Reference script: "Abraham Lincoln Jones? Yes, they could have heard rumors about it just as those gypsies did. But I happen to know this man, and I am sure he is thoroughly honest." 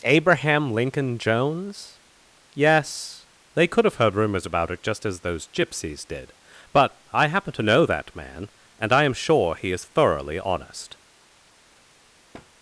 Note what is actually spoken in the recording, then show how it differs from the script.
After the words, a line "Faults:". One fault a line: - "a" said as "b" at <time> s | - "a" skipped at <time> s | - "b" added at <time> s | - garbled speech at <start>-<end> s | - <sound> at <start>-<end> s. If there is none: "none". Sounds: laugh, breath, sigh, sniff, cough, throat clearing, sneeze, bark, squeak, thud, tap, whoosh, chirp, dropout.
"Abraham Lincoln Jones? Yes, they could have heard rumors about it just as those gypsies did. But I happen to know that man, and I am sure he is thoroughly honest."
Faults:
- "this" said as "that" at 7.8 s
- thud at 12.3-12.5 s